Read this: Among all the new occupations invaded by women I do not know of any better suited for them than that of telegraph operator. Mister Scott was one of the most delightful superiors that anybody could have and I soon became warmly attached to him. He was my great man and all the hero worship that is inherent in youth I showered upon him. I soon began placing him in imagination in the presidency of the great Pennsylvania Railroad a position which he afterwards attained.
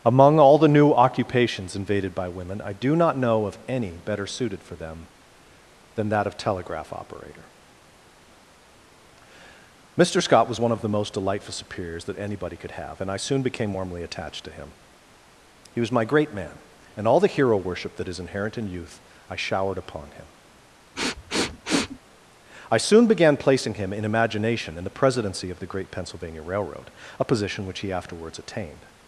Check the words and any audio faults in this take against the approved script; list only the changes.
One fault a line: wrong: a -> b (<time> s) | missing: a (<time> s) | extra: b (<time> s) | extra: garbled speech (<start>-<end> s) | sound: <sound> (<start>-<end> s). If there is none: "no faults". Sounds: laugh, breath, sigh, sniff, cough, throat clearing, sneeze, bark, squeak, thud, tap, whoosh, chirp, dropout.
sound: sniff (21.0-22.0 s)